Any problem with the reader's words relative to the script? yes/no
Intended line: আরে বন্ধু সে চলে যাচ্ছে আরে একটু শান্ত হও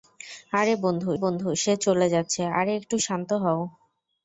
yes